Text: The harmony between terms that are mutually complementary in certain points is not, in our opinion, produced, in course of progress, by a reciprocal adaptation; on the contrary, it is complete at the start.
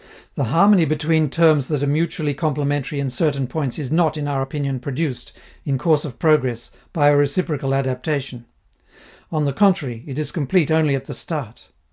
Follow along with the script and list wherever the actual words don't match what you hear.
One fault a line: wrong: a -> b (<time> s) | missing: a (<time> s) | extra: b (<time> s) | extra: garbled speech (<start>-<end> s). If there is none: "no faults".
extra: only (10.7 s)